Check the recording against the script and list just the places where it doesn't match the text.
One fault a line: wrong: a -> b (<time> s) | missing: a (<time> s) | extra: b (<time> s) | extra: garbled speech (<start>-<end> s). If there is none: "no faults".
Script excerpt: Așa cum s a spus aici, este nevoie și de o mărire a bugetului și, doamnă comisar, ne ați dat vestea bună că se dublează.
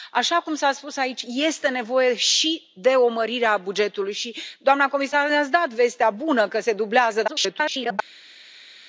extra: garbled speech (7.3-8.0 s)